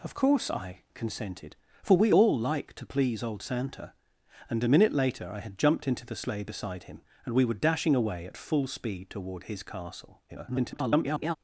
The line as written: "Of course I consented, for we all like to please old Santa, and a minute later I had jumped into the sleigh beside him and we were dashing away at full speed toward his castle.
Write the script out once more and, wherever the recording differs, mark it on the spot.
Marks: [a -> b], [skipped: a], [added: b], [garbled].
"Of course I consented, for we all like to please old Santa, and a minute later I had jumped into the sleigh beside him and we were dashing away at full speed toward his castle. [garbled]